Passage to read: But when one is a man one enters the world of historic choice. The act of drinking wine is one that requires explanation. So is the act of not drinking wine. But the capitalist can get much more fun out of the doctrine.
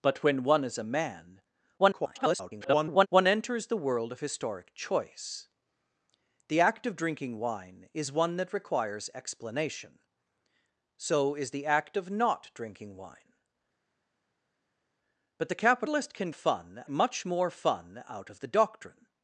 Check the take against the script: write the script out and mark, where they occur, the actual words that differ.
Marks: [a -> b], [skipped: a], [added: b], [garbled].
But when one is a man [garbled] one enters the world of historic choice. The act of drinking wine is one that requires explanation. So is the act of not drinking wine. But the capitalist can [get -> fun] much more fun out of the doctrine.